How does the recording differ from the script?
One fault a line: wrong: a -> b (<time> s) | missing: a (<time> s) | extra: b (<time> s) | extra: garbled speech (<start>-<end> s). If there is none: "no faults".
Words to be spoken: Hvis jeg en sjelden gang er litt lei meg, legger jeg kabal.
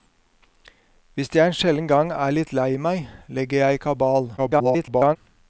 extra: garbled speech (4.4-5.2 s)